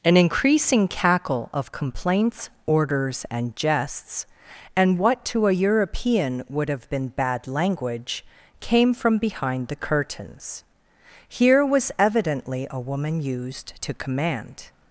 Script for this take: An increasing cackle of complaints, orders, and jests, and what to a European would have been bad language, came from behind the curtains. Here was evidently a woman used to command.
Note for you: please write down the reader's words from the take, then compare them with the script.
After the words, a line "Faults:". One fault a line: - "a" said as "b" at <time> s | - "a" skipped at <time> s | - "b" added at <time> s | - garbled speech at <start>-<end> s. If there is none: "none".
An increasing cackle of complaints, orders, and jests, and what to a European would have been bad language, came from behind the curtains. Here was evidently a woman used to command.
Faults:
none